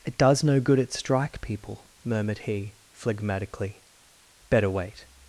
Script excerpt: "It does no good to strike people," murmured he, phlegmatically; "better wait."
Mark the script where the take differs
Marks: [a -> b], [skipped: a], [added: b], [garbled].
"It does no good [to -> at] strike people," murmured he, phlegmatically; "better wait."